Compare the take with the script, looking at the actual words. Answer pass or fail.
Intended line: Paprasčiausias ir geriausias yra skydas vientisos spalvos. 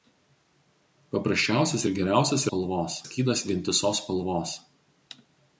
fail